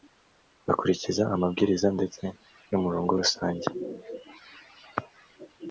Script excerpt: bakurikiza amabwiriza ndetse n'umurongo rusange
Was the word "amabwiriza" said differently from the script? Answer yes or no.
no